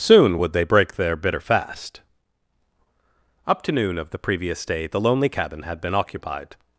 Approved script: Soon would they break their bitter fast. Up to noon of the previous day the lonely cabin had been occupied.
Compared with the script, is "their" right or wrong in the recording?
right